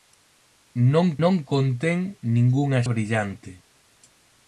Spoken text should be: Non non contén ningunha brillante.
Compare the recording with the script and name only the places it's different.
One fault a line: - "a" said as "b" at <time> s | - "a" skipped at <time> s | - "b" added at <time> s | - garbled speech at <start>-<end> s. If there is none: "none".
none